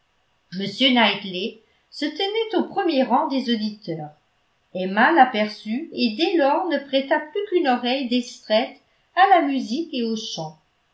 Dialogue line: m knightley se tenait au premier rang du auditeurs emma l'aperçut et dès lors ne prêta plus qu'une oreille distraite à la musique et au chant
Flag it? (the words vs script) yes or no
yes